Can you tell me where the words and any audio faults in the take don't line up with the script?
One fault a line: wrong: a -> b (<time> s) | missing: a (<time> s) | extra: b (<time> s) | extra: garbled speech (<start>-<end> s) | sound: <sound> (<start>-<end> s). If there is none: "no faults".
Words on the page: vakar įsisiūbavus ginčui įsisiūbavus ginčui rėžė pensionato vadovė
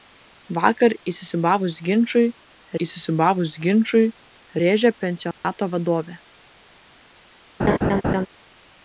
sound: dropout (5.3-5.4 s)
sound: laugh (7.6-8.3 s)